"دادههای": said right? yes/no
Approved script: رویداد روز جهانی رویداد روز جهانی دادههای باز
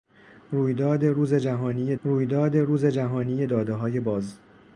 yes